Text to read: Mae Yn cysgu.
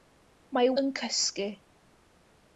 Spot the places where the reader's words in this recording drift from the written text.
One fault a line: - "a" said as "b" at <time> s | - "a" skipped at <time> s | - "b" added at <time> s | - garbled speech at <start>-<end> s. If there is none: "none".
none